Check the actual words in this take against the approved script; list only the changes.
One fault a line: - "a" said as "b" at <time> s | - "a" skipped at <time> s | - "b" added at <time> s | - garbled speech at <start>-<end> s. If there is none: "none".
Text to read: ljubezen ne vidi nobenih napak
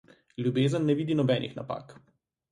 none